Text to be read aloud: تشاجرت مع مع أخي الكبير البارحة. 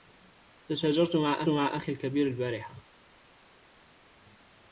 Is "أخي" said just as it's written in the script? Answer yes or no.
yes